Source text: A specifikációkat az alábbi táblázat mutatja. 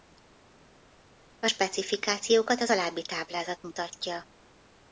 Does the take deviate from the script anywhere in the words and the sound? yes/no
no